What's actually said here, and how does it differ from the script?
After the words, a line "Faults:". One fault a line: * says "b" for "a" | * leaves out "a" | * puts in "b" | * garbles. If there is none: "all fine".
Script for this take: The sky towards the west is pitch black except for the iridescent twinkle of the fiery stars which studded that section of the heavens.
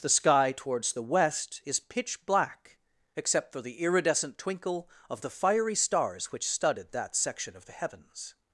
The sky towards the west is pitch black except for the iridescent twinkle of the fiery stars which studded that section of the heavens.
Faults:
all fine